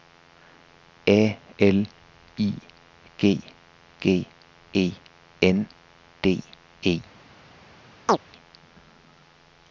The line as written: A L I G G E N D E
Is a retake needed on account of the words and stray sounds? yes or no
yes